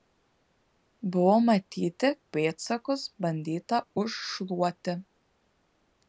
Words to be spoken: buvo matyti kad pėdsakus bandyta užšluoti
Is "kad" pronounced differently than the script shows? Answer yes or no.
yes